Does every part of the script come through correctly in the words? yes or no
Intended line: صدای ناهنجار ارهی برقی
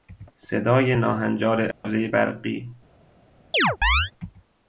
yes